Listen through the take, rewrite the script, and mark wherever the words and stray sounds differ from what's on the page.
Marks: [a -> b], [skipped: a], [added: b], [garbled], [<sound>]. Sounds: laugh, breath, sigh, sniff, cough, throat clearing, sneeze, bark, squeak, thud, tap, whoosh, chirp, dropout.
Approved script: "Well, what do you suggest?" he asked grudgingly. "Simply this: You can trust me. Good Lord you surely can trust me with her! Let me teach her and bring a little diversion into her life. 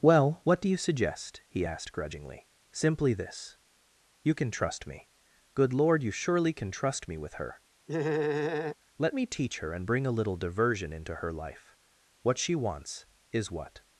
"Well, what do you suggest?" he asked grudgingly. "Simply this: You can trust me. Good Lord you surely can trust me with her! [laugh] Let me teach her and bring a little diversion into her life. [added: What she wants is what]